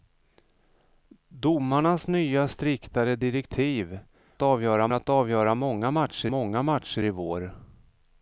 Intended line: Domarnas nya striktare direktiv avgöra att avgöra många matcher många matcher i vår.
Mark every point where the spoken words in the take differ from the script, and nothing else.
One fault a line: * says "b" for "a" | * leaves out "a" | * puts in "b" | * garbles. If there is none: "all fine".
all fine